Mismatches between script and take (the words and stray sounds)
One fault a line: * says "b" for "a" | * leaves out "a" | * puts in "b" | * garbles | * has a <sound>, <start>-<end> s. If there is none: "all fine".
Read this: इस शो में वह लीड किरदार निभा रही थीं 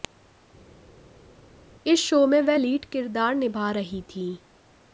all fine